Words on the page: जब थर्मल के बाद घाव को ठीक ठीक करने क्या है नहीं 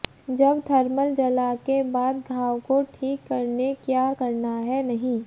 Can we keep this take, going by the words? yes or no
no